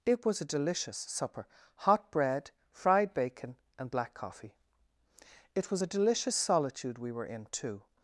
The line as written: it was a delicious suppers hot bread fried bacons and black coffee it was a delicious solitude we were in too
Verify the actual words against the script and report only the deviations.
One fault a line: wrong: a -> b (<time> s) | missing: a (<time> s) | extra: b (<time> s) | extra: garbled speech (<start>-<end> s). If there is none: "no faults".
wrong: suppers -> supper (1.0 s)
wrong: bacons -> bacon (3.1 s)